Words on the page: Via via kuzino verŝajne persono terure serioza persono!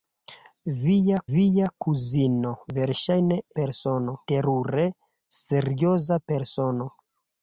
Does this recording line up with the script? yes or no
yes